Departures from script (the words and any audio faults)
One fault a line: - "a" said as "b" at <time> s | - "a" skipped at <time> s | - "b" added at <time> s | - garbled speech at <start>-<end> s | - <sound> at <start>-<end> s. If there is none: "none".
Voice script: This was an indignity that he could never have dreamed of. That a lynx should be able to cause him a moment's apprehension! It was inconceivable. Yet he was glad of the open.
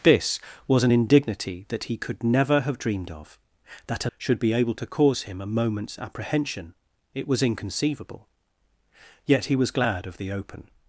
- "lynx" skipped at 4.1 s